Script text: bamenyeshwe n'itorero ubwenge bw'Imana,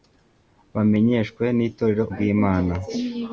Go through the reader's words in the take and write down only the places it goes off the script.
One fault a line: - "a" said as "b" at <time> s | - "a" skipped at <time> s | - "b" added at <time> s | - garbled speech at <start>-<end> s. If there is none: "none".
- "ubwenge" skipped at 2.0 s